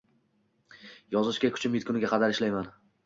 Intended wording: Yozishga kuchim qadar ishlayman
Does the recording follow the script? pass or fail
fail